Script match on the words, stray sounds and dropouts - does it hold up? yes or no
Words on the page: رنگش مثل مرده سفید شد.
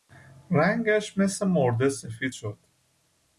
yes